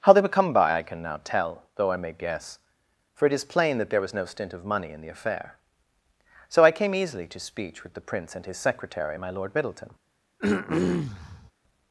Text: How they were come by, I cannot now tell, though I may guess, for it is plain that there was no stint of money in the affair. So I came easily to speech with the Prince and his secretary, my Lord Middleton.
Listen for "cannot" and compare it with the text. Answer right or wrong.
wrong